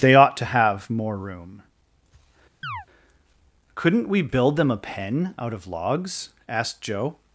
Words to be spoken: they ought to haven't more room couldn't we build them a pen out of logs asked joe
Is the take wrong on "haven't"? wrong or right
wrong